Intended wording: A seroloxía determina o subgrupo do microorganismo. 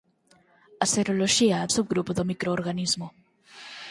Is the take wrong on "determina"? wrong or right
wrong